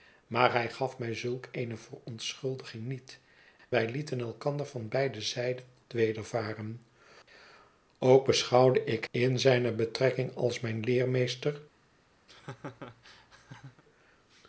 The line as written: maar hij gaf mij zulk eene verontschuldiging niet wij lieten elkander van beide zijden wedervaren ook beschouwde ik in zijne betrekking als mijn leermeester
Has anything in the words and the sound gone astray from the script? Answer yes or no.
yes